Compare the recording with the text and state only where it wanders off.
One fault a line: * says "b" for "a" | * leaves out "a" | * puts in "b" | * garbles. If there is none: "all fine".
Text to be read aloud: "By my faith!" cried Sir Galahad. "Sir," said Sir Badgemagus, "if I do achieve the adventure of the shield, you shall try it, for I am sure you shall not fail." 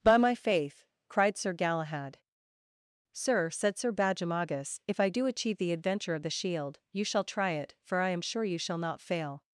all fine